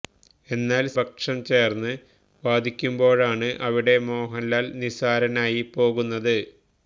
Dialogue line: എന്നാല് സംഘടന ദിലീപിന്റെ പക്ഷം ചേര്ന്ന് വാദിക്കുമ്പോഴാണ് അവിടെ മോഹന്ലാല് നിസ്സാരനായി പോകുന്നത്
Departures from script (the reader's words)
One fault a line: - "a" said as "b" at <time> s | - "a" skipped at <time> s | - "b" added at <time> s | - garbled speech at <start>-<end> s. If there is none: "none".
- "സംഘടന ദിലീപിന്റെ" skipped at 0.9 s